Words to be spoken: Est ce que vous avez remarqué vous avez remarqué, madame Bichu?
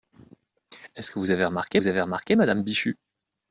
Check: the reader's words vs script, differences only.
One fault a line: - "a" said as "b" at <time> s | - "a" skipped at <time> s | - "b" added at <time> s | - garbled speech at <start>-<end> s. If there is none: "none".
none